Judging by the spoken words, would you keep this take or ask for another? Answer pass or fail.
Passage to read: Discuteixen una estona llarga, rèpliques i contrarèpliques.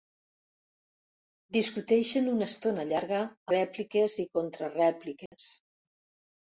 pass